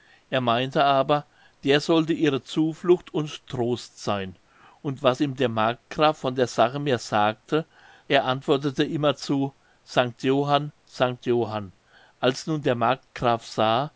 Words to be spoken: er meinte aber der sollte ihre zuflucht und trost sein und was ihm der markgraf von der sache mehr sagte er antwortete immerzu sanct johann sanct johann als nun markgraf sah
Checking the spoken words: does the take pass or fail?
fail